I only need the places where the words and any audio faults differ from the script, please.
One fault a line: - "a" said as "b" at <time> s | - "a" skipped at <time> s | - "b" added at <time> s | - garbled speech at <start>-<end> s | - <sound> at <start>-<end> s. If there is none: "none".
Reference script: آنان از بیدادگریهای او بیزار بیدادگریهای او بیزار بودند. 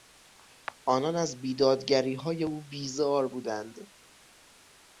- "بیدادگریهای او بیزار" skipped at 3.3 s